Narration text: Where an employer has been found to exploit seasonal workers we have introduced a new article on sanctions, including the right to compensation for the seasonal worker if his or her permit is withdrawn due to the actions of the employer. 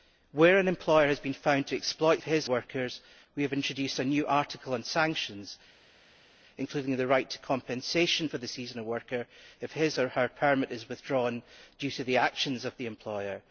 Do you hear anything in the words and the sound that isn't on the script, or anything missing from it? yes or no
yes